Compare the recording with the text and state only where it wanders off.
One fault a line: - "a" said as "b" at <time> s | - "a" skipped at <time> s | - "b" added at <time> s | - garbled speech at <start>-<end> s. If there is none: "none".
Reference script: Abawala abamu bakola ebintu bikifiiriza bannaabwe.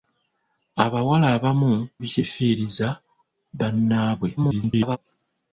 - "bakola ebintu" skipped at 1.7 s
- garbled speech at 4.4-5.0 s